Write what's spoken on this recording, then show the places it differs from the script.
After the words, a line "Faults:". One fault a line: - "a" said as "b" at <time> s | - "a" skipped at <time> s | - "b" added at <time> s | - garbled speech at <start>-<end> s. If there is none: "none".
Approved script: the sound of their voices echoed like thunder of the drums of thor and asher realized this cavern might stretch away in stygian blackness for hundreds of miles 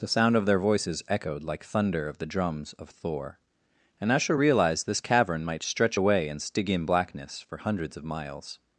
the sound of their voices echoed like thunder of the drums of thor and asher realized this cavern might stretch away in stygian blackness for hundreds of miles
Faults:
none